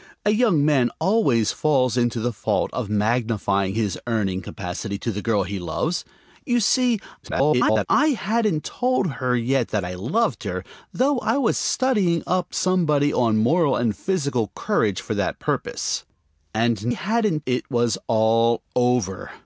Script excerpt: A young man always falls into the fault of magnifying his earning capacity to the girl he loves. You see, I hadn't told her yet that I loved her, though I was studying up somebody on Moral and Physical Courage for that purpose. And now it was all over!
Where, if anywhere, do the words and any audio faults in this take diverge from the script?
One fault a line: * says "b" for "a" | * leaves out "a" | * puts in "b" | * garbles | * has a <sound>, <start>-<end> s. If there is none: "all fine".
* garbles
* says "hadn't" for "now"